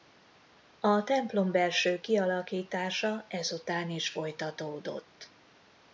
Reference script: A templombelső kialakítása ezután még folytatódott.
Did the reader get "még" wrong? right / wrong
wrong